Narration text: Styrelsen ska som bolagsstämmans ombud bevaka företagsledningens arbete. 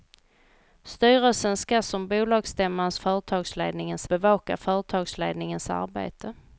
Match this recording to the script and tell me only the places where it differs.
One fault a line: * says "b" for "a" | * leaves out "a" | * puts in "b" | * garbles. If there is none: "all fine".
* says "företagsledningens" for "ombud"